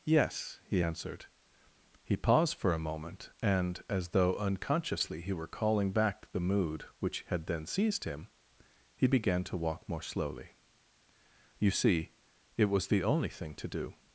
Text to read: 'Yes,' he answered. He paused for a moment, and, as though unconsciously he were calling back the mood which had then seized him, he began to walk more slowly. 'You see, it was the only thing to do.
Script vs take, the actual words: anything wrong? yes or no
no